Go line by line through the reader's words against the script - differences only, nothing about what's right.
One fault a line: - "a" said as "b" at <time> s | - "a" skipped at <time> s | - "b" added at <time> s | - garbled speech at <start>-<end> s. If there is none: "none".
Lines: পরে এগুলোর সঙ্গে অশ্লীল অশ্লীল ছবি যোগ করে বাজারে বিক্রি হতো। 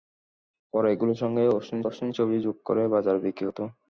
none